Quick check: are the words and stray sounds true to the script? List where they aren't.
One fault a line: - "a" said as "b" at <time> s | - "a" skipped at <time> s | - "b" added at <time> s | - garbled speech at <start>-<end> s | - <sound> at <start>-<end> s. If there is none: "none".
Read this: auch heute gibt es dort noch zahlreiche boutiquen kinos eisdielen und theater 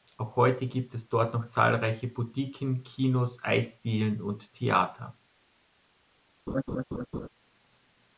- laugh at 6.5-7.3 s